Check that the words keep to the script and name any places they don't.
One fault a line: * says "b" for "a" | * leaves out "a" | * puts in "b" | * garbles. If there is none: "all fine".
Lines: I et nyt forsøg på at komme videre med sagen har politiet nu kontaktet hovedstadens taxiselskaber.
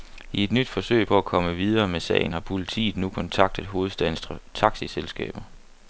all fine